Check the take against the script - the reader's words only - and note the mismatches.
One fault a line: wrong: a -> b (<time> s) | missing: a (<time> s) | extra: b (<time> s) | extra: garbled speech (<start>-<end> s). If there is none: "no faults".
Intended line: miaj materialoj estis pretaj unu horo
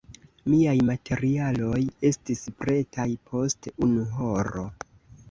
extra: post (3.3 s)